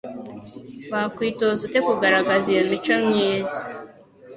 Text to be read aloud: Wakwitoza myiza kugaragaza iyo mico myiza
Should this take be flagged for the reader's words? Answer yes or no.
yes